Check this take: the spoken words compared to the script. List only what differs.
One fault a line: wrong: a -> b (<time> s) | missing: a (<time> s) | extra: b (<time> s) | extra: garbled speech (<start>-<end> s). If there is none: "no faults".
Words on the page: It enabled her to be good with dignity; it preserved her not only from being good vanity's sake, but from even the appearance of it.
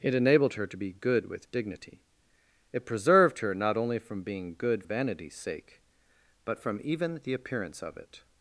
no faults